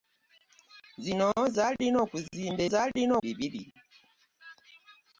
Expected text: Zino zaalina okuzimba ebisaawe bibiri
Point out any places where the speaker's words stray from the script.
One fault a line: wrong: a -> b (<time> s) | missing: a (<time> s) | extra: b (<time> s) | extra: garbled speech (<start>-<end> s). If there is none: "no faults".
wrong: ebisaawe -> zaalina (2.7 s)